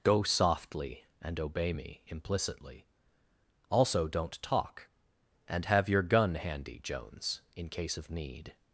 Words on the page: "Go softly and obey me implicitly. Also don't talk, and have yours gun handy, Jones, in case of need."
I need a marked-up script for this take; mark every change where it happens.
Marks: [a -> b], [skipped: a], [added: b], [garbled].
"Go softly and obey me implicitly. Also don't talk, and have [yours -> your] gun handy, Jones, in case of need."